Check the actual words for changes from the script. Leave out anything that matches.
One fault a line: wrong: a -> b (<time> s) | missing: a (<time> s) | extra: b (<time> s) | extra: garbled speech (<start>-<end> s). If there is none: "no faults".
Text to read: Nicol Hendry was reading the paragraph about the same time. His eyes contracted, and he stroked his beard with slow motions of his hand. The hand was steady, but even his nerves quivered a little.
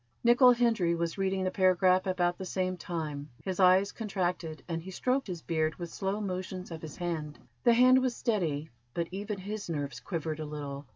no faults